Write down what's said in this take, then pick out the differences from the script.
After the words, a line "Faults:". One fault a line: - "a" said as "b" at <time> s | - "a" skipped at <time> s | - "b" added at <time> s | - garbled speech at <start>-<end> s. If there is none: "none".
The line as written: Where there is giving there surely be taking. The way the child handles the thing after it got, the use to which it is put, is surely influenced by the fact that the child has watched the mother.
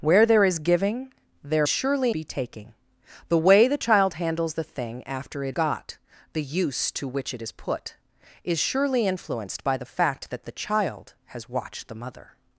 Where there is giving there surely be taking. The way the child handles the thing after it got, the use to which it is put, is surely influenced by the fact that the child has watched the mother.
Faults:
none